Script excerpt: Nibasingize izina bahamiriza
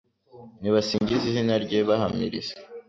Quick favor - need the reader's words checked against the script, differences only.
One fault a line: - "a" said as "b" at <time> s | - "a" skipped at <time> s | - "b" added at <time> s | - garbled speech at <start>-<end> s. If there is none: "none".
- "rye" added at 1.6 s